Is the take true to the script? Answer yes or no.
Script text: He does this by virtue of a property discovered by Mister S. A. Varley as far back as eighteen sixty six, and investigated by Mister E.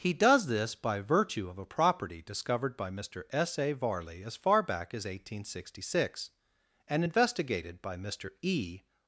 yes